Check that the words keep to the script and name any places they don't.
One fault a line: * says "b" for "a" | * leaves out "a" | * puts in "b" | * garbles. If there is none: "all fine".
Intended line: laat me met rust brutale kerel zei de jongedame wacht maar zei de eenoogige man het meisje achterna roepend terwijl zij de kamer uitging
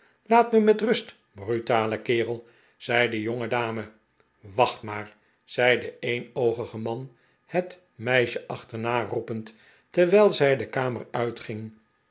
all fine